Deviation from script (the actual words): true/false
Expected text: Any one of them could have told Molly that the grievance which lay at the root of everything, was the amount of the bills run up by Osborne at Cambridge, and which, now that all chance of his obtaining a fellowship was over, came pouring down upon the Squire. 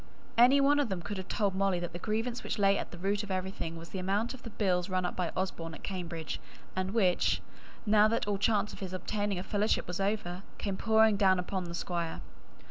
false